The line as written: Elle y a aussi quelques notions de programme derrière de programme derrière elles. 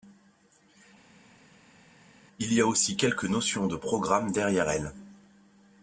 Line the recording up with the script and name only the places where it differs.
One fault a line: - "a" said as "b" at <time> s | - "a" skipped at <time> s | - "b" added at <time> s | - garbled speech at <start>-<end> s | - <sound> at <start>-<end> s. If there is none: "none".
- "Elle" said as "Il" at 2.4 s
- "de programme derrière" skipped at 4.7 s